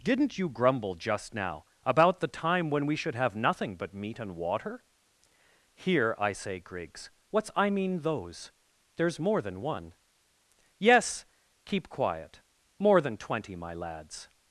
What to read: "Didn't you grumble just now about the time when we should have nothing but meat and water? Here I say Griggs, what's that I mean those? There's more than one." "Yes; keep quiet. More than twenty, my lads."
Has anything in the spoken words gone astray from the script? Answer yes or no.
yes